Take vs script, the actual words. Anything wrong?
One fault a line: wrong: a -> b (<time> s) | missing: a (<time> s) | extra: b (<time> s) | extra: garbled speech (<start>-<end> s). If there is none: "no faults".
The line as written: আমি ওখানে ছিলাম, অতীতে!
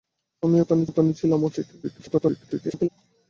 extra: ওখানে (0.9 s)
extra: garbled speech (1.8-2.9 s)